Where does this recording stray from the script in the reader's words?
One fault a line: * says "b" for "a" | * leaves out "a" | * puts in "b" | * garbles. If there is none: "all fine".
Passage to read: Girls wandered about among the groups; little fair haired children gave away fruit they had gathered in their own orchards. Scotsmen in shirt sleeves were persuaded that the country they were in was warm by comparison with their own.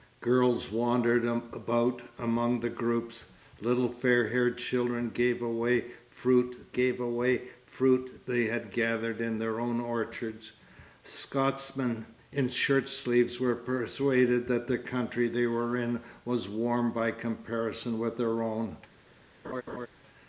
* puts in "gave away fruit"